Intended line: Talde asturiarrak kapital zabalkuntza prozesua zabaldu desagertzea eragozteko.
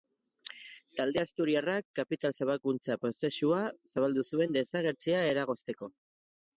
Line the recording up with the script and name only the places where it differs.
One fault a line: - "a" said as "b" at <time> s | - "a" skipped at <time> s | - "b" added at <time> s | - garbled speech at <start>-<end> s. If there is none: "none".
- "zuen" added at 4.3 s